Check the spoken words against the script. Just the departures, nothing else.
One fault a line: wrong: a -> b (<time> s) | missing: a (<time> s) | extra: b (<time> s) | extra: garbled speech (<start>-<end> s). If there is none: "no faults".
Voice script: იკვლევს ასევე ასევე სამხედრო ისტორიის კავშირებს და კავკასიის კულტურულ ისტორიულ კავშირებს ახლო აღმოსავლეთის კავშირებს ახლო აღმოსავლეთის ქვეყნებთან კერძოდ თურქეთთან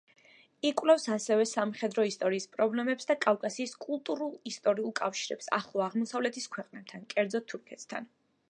missing: ასევე (1.4 s)
wrong: კავშირებს -> პრობლემებს (2.5 s)
missing: კავშირებს ახლო აღმოსავლეთის (6.5 s)